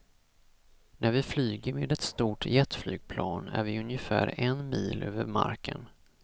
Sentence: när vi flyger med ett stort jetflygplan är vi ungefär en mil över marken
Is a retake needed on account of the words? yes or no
no